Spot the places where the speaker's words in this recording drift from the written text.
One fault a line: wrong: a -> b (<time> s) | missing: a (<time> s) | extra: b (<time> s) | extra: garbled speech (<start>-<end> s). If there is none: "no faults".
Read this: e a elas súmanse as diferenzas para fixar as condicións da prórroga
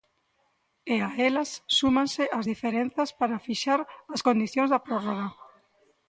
no faults